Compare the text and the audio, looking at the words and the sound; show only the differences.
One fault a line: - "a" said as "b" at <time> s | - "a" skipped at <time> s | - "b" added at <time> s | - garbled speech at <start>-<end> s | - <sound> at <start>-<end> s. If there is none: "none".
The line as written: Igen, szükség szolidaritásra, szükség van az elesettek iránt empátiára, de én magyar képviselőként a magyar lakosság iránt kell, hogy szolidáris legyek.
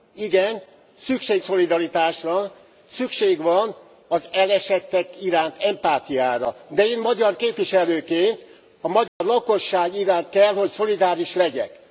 - dropout at 9.1-9.2 s